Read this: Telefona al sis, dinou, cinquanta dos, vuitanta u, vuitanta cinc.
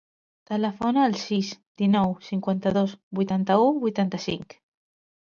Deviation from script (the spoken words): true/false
false